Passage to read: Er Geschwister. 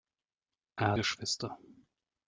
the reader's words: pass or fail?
pass